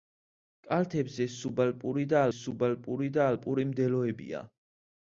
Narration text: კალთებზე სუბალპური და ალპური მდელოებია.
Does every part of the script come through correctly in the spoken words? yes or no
no